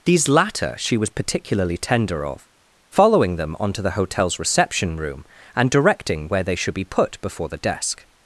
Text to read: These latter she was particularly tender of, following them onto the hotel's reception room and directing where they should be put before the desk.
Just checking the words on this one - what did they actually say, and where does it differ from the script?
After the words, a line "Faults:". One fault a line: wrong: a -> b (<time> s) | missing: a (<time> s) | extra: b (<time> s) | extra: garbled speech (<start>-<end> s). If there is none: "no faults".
These latter she was particularly tender of, following them onto the hotel's reception room and directing where they should be put before the desk.
Faults:
no faults